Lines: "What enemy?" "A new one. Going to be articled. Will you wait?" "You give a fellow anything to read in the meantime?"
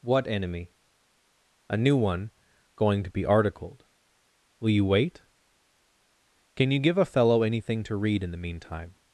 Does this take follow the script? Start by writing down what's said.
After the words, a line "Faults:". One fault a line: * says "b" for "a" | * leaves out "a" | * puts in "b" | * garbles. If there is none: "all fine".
"What enemy?" "A new one. Going to be articled. Will you wait?" "Can you give a fellow anything to read in the meantime?"
Faults:
* puts in "Can"